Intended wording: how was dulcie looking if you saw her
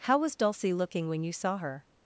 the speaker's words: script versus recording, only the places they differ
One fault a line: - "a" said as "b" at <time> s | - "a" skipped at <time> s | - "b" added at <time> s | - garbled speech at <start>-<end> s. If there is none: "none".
- "if" said as "when" at 1.1 s